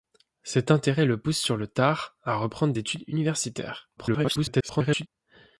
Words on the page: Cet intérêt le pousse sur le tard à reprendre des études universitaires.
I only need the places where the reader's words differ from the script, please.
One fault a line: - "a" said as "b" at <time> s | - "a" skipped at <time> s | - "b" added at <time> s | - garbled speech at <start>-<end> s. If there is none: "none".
- "des" skipped at 2.7 s
- garbled speech at 4.0-5.1 s